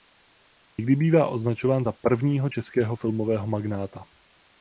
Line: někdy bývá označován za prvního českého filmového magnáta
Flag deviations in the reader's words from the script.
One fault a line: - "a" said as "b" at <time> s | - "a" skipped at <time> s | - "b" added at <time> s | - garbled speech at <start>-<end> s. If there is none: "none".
none